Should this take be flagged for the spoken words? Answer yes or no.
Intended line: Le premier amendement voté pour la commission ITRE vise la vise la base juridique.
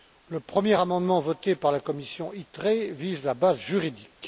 yes